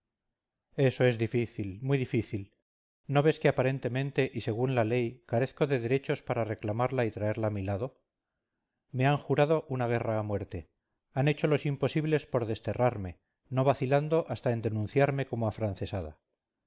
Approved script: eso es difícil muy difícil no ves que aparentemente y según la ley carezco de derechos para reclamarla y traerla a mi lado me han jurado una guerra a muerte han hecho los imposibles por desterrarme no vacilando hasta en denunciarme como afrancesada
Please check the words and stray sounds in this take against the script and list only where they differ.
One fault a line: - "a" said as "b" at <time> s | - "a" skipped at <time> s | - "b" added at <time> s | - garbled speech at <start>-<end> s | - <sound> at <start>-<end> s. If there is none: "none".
none